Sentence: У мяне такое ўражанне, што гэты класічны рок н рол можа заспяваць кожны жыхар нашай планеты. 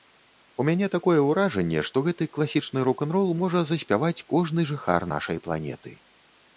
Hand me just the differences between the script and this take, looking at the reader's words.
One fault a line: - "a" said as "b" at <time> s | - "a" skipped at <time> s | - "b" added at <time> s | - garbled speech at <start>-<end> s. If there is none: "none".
none